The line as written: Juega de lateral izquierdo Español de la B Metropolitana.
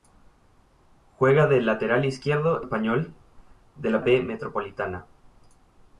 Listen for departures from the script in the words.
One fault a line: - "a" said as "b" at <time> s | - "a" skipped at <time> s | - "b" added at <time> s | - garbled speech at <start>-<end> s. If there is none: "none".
none